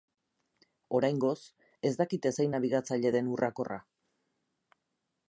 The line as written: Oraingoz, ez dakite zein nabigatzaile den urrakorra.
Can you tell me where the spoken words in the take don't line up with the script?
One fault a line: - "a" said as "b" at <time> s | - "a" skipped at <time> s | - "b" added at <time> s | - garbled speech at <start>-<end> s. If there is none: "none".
none